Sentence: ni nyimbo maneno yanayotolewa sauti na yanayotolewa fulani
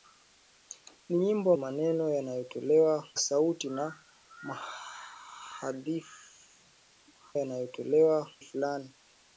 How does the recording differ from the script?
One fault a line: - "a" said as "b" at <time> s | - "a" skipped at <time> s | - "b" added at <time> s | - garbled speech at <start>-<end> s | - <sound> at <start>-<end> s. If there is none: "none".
none